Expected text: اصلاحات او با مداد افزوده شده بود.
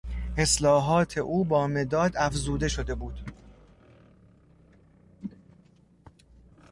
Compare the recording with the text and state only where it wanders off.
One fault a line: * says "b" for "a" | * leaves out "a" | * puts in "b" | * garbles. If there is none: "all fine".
all fine